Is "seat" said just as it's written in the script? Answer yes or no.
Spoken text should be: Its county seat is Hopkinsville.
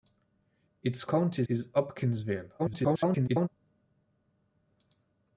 no